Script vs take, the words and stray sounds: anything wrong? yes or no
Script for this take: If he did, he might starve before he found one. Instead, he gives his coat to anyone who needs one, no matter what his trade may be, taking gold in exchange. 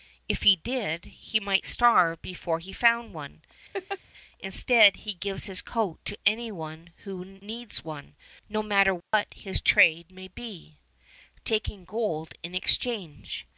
yes